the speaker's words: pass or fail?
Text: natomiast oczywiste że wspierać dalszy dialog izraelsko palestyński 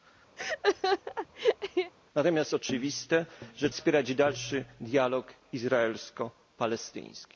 pass